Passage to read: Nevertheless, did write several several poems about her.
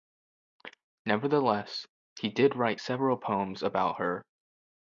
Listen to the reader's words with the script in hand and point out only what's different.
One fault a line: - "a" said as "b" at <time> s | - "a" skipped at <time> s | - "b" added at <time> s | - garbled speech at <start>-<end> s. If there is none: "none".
- "he" added at 2.2 s
- "several" skipped at 3.2 s